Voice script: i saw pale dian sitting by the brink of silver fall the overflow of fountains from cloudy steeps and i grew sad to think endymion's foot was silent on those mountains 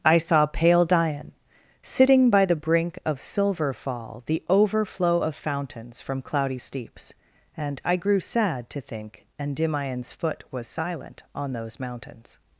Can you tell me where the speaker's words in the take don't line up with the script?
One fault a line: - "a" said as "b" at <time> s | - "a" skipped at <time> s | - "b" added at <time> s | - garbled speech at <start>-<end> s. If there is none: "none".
none